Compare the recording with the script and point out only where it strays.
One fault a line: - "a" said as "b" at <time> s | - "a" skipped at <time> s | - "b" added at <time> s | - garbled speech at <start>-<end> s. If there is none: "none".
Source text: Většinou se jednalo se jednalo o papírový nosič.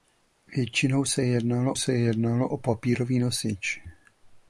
none